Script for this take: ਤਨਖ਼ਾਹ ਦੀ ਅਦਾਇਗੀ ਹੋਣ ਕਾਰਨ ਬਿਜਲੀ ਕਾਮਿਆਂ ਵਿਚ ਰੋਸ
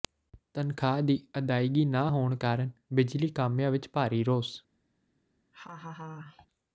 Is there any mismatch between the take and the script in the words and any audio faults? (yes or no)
yes